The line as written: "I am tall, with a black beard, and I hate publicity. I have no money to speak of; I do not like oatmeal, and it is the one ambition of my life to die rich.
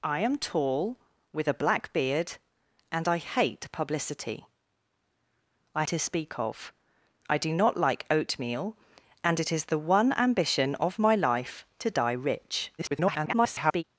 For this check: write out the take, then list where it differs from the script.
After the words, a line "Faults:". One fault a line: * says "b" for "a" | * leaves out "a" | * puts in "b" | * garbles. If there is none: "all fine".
"I am tall, with a black beard, and I hate publicity. I to speak of; I do not like oatmeal, and it is the one ambition of my life to die rich. [garbled]
Faults:
* leaves out "have no money"
* garbles